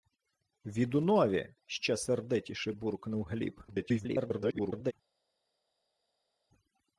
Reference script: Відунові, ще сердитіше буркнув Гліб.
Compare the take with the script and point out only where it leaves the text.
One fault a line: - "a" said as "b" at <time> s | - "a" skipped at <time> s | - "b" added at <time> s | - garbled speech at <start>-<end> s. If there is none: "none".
- garbled speech at 3.7-4.9 s